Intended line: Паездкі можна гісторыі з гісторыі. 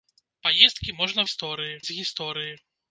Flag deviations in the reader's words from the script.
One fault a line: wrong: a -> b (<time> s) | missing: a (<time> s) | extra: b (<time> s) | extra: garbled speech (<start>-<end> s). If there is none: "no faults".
no faults